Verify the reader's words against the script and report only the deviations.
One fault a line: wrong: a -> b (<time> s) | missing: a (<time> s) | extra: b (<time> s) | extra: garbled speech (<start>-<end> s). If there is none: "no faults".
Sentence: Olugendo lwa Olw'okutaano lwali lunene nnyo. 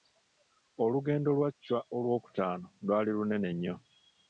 extra: Chwa (1.6 s)